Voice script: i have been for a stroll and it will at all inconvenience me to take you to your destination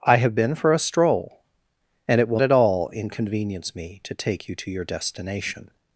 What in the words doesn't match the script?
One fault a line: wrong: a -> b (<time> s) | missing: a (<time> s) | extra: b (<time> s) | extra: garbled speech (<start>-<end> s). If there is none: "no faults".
no faults